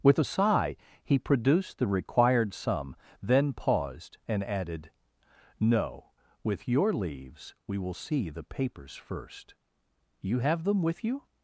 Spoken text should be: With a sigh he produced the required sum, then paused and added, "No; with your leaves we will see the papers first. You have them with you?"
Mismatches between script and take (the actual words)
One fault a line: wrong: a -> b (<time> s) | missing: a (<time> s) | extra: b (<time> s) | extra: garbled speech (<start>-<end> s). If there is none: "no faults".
no faults